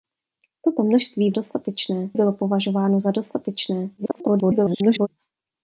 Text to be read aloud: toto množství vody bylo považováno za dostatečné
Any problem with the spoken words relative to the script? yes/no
yes